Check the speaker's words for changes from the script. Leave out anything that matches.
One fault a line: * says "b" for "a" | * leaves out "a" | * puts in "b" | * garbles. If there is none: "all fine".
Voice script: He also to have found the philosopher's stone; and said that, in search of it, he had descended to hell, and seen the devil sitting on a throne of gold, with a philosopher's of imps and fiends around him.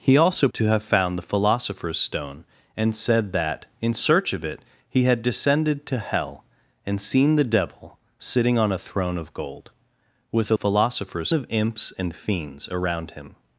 all fine